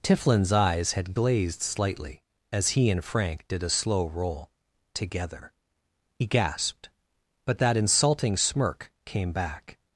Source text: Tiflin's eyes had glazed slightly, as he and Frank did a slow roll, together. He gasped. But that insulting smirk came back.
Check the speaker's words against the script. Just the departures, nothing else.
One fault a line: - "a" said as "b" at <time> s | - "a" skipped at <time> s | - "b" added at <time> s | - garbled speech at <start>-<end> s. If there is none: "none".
none